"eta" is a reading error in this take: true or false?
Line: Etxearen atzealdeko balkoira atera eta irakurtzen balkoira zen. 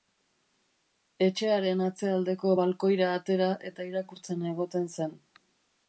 false